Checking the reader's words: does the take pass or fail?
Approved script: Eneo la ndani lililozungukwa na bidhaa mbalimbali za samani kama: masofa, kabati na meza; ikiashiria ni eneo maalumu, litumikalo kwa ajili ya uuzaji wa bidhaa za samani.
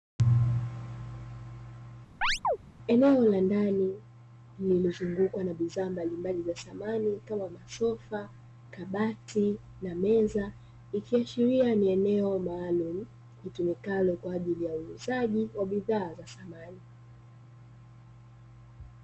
pass